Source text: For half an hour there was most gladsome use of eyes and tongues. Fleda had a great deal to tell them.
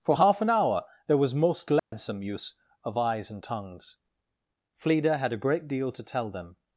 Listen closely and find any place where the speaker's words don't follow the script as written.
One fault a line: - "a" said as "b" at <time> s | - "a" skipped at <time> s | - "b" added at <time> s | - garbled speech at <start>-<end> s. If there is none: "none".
none